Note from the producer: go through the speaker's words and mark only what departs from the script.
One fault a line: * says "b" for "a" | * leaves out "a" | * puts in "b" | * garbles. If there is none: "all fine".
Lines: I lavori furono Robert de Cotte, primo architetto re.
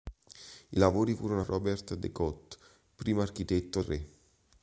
all fine